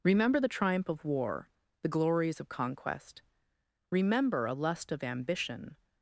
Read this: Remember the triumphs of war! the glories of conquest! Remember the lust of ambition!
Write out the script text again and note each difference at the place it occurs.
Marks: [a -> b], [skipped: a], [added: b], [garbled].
Remember the [triumphs -> triumph] of war! the glories of conquest! Remember [the -> a] lust of ambition!